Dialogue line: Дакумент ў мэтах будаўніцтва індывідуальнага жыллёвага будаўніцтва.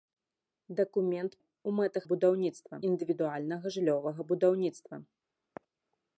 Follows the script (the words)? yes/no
yes